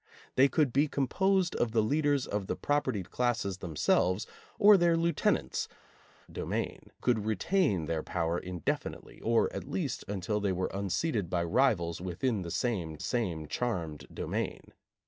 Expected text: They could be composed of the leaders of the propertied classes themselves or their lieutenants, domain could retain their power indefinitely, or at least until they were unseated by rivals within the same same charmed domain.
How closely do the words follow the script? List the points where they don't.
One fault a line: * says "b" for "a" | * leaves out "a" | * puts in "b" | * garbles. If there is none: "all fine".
all fine